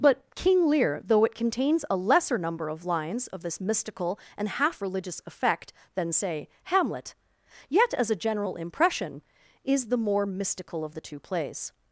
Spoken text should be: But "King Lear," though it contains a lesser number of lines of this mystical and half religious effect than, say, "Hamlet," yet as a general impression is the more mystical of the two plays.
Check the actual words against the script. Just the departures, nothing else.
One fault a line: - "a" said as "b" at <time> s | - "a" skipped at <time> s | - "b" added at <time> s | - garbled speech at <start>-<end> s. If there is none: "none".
none